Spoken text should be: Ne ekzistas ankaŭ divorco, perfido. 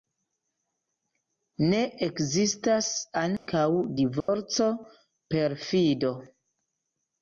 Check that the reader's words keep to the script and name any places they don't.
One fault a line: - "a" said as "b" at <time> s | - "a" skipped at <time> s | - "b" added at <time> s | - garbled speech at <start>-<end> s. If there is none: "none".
none